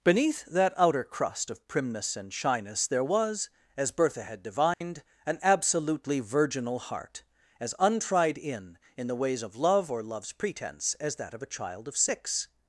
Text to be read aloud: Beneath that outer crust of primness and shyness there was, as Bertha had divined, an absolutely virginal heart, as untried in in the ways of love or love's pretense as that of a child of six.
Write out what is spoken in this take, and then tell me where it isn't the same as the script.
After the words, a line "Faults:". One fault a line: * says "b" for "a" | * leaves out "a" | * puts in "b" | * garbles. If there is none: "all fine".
Beneath that outer crust of primness and shyness there was, as Bertha had divined, an absolutely virginal heart, as untried in in the ways of love or love's pretense as that of a child of six.
Faults:
all fine